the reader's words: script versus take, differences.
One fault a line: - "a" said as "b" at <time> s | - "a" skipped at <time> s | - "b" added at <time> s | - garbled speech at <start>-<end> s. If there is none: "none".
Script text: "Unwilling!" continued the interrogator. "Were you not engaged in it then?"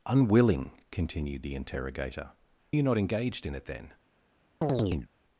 - "Were" skipped at 2.3 s